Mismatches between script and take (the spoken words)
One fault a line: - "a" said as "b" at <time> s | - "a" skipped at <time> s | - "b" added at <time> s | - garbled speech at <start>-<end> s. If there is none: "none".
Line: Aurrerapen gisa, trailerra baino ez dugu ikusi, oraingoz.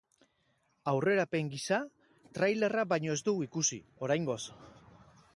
none